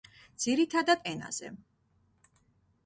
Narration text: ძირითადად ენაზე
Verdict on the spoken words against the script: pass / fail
pass